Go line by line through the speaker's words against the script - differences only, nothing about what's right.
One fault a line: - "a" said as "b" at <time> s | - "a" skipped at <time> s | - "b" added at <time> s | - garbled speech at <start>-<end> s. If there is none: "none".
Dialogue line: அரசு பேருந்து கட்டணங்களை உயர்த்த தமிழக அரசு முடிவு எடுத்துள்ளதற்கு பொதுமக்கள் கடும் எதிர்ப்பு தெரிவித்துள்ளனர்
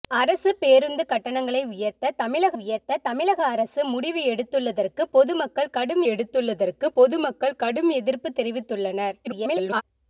- "உயர்த்த தமிழக" added at 2.5 s
- "எடுத்துள்ளதற்கு பொதுமக்கள் கடும்" added at 6.1 s
- garbled speech at 9.2-9.8 s